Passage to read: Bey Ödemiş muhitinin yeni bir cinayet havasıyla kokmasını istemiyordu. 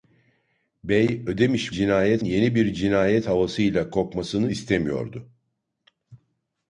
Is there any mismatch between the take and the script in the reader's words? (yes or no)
yes